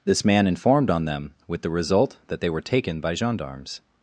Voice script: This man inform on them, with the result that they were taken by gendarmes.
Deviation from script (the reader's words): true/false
true